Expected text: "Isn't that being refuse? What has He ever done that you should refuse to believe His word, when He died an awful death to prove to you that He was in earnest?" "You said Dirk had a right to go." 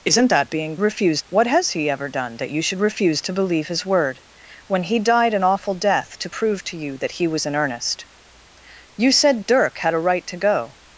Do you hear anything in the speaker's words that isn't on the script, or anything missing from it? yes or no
no